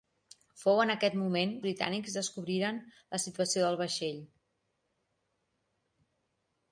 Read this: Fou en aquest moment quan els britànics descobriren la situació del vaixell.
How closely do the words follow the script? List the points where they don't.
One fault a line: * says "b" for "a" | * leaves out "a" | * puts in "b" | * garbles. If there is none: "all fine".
* leaves out "quan els"